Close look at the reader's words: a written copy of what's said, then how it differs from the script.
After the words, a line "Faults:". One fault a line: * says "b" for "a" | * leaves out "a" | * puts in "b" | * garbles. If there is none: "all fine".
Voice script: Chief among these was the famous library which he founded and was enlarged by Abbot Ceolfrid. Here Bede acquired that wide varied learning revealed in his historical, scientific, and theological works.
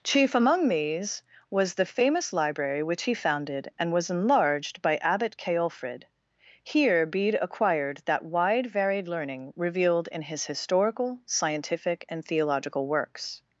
Chief among these was the famous library which he founded and was enlarged by Abbot Ceolfrid. Here Bede acquired that wide varied learning revealed in his historical, scientific, and theological works.
Faults:
all fine